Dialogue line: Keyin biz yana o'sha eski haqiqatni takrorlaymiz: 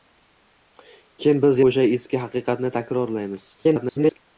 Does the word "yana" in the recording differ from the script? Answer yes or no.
yes